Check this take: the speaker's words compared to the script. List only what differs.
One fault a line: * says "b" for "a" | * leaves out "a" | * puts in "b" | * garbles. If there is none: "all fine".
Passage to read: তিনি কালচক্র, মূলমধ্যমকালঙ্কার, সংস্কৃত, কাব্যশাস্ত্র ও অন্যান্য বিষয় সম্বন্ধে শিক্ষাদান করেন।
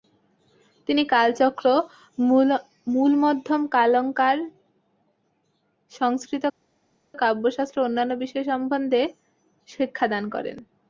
all fine